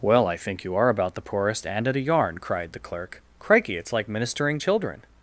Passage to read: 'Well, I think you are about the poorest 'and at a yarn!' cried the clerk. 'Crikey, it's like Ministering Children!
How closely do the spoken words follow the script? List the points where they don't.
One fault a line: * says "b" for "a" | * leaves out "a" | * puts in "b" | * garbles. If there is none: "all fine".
all fine